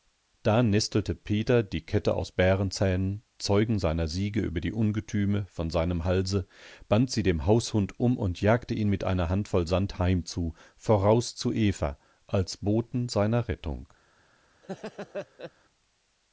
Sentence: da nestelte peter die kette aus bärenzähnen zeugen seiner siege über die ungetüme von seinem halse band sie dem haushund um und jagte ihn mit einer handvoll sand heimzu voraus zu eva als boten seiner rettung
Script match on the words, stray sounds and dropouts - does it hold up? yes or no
no